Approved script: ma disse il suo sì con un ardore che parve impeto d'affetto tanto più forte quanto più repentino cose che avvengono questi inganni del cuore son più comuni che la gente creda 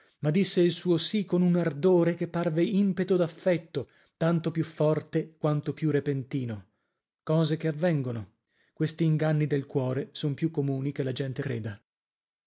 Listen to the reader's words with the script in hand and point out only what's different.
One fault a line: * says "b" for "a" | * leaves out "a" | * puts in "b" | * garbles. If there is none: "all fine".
all fine